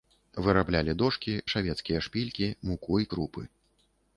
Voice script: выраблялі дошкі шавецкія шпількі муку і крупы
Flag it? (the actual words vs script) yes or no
no